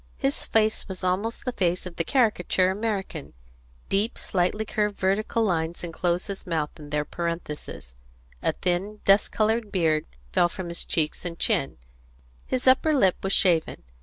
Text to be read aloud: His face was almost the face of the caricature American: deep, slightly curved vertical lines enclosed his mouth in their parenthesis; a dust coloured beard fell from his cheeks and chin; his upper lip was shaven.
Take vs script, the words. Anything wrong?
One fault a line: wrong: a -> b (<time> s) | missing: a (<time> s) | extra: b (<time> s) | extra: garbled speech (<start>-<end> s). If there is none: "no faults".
extra: thin (8.5 s)